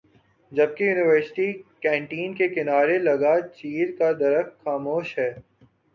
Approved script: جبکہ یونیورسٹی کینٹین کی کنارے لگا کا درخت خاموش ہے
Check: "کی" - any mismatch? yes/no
yes